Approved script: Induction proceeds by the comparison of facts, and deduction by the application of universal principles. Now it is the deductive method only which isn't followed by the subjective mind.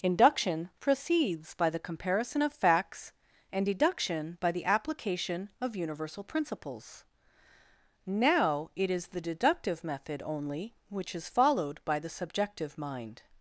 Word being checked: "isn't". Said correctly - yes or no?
no